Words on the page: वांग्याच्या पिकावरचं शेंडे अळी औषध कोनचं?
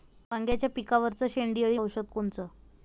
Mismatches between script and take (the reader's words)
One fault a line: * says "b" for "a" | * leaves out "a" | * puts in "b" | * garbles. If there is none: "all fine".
all fine